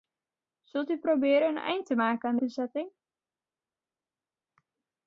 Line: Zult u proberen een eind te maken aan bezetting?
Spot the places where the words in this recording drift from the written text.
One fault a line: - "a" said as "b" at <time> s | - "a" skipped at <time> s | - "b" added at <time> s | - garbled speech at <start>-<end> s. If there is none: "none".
none